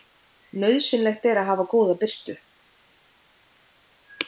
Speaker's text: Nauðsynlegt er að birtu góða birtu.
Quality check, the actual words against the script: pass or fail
fail